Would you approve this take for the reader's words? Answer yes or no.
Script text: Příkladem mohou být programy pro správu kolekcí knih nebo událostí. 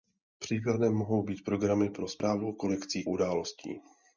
no